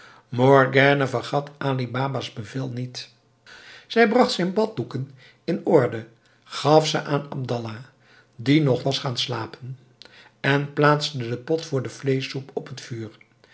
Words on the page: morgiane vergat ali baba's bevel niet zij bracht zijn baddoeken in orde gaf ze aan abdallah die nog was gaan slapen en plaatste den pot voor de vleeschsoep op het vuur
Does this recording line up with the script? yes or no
yes